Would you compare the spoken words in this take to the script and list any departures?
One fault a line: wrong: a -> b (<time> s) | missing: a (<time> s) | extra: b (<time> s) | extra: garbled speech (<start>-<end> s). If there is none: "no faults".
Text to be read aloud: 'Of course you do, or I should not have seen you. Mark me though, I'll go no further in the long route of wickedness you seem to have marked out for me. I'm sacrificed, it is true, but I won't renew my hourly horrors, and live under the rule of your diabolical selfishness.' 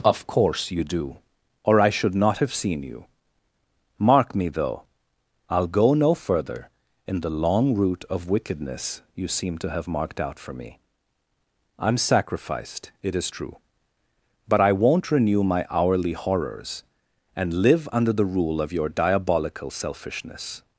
no faults